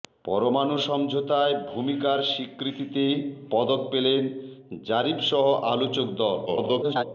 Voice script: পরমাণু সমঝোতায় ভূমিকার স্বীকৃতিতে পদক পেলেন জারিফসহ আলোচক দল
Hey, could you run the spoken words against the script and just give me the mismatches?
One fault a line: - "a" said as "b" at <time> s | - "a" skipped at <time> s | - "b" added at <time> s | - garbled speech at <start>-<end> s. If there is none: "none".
- garbled speech at 6.5-7.0 s